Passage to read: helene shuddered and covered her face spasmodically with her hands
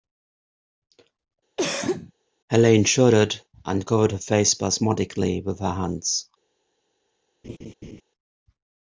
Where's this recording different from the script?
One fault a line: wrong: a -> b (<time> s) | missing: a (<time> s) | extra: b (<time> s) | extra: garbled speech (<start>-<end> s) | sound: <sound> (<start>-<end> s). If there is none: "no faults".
sound: cough (1.6-2.1 s)
sound: laugh (7.4-8.0 s)